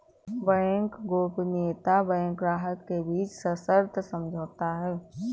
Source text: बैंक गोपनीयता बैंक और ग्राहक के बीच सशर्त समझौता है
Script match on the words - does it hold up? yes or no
no